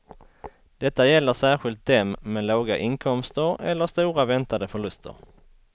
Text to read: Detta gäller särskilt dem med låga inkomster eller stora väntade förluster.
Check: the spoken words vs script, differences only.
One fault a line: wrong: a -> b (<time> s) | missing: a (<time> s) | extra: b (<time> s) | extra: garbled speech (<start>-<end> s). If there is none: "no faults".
no faults